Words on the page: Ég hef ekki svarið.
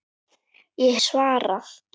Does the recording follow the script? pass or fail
fail